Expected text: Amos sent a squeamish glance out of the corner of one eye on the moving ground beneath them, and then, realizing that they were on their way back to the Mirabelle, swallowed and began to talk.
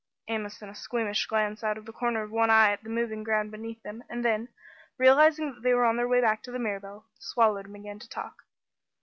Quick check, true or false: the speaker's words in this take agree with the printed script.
false